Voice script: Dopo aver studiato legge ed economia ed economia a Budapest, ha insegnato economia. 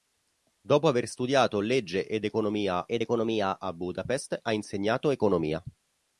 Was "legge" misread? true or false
false